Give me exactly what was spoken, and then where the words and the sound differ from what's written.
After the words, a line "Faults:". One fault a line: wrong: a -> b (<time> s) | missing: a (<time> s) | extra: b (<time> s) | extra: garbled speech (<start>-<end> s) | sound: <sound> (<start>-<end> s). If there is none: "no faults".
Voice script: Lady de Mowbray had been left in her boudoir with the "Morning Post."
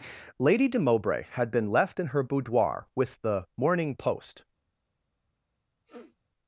Lady de Mowbray had been left in her boudoir with the "Morning Post."
Faults:
sound: sniff (5.8-6.2 s)